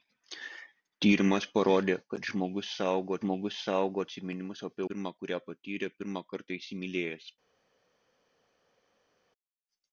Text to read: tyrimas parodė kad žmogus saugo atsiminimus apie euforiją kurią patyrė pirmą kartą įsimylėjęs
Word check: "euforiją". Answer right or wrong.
wrong